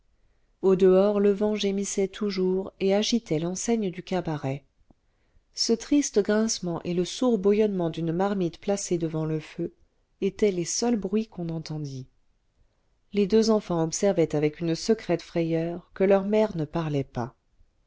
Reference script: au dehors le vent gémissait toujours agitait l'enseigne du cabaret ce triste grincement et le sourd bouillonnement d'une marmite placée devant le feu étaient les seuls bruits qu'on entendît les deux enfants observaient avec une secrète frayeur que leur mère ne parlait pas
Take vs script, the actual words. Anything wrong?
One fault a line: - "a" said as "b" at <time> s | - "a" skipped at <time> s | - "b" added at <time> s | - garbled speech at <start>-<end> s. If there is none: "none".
- "et" added at 2.8 s